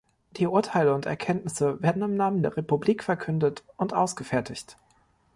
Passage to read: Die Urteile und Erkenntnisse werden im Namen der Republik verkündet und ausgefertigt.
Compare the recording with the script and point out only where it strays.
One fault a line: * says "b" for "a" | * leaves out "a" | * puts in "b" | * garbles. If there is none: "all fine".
all fine